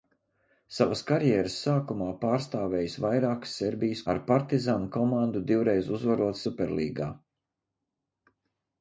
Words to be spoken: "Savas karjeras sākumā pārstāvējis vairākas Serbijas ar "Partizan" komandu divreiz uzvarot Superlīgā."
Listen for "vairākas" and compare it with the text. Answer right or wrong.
right